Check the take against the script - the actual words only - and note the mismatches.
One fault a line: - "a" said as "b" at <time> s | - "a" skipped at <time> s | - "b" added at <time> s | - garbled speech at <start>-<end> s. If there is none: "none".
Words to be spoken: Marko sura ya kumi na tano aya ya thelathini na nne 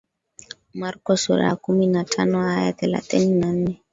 none